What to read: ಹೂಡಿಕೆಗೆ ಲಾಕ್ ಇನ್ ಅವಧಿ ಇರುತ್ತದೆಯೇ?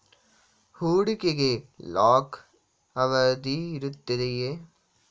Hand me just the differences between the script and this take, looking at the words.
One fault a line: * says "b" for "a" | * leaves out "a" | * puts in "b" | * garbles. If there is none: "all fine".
* leaves out "ಇನ್"